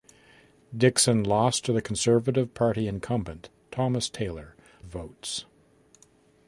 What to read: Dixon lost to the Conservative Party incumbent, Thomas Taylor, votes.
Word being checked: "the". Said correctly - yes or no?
yes